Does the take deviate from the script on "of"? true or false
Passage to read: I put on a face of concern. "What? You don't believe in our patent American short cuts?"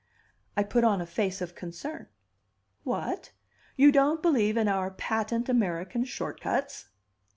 false